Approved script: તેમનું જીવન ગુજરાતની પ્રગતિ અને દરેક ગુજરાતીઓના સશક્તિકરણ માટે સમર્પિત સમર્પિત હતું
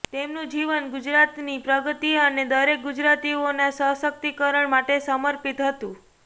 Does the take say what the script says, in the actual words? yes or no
no